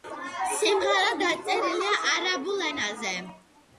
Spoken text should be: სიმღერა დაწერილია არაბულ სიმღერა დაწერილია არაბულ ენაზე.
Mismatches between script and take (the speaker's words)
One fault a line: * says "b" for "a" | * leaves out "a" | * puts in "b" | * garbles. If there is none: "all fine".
* leaves out "სიმღერა დაწერილია არაბულ"